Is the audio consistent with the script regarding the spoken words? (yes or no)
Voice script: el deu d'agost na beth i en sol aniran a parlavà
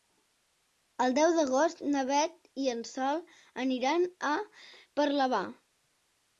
yes